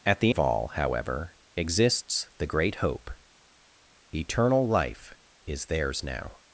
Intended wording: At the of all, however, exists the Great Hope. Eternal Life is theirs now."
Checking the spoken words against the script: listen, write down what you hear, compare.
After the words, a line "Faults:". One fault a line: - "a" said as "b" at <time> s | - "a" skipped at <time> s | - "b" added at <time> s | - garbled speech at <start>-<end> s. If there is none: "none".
At the of all, however, exists the Great Hope. Eternal Life is theirs now."
Faults:
none